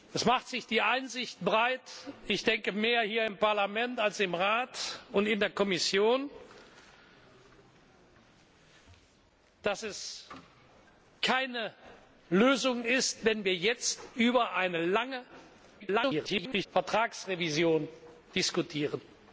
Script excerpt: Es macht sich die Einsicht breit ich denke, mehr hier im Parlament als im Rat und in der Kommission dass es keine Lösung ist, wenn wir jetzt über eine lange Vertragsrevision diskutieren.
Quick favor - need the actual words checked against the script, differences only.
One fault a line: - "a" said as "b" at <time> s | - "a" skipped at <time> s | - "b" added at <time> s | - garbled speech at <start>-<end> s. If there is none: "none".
- garbled speech at 15.8-16.7 s